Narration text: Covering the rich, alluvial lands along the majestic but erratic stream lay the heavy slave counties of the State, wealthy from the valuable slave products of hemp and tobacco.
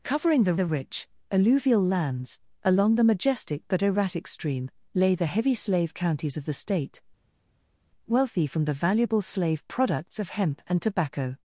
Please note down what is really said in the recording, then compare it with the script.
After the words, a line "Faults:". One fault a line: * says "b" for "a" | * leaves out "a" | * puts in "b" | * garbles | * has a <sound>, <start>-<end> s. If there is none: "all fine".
Covering the the rich, alluvial lands along the majestic but erratic stream lay the heavy slave counties of the State, wealthy from the valuable slave products of hemp and tobacco.
Faults:
* puts in "the"